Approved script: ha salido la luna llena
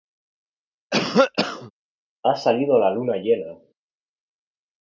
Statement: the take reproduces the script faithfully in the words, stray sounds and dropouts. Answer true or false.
false